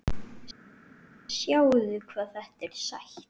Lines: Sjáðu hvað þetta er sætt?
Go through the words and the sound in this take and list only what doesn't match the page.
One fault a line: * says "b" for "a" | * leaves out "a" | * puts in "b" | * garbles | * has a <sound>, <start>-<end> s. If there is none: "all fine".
all fine